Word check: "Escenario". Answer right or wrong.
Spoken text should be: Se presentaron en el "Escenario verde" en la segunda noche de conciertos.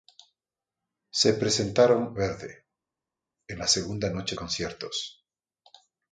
wrong